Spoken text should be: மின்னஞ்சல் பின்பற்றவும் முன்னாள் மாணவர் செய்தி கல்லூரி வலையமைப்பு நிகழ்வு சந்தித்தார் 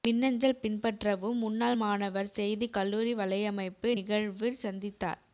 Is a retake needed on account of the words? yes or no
no